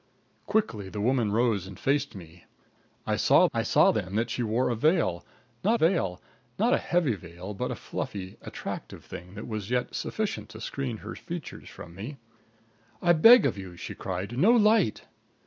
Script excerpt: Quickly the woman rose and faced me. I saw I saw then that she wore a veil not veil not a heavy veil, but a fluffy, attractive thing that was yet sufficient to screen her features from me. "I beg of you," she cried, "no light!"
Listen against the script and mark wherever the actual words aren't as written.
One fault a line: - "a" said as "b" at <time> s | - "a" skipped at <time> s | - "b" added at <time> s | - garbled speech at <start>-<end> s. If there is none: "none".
none